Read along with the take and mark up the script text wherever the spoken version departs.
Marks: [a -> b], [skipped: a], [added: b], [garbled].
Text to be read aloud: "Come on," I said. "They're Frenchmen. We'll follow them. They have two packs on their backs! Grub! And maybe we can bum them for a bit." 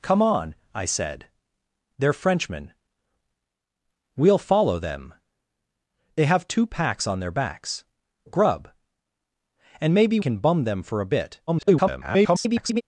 "Come on," I said. "They're Frenchmen. We'll follow them. They have two packs on their backs! Grub! And maybe [skipped: we] can bum them for a bit." [garbled]